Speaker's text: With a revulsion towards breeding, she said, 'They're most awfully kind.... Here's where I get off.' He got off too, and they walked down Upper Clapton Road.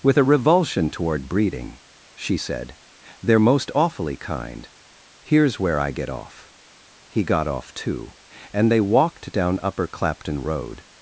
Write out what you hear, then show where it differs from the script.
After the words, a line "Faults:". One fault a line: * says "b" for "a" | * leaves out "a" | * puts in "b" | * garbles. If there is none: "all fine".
With a revulsion toward breeding, she said, 'They're most awfully kind.... Here's where I get off.' He got off too, and they walked down Upper Clapton Road.
Faults:
* says "toward" for "towards"